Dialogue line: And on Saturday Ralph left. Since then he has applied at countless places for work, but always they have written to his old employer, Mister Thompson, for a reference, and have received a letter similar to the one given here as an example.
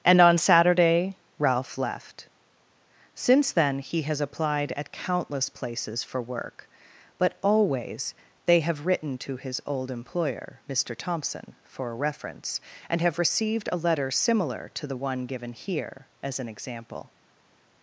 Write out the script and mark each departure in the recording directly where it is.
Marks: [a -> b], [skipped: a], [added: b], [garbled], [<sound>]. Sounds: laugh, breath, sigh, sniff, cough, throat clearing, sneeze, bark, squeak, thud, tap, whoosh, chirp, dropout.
And on Saturday Ralph left. Since then he has applied at countless places for work, but always they have written to his old employer, Mister Thompson, for a reference, and have received a letter similar to the one given here as an example.